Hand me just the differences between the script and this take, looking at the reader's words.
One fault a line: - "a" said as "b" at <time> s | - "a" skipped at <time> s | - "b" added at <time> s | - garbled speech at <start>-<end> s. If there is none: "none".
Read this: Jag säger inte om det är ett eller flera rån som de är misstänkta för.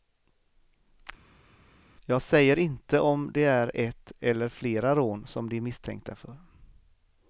none